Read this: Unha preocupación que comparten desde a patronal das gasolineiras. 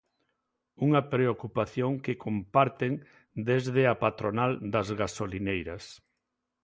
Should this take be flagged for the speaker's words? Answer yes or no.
no